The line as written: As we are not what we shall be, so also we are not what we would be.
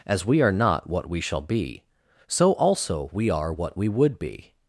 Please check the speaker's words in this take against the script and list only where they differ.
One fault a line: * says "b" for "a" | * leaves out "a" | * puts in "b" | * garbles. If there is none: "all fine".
* leaves out "not"